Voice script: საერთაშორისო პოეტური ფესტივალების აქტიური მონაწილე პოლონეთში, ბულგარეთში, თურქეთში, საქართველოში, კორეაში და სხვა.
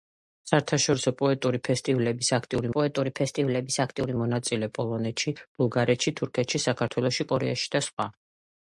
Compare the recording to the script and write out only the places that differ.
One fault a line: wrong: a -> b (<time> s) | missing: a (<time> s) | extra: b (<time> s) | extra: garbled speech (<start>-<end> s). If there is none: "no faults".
extra: პოეტური ფესტივალების აქტიური (2.7 s)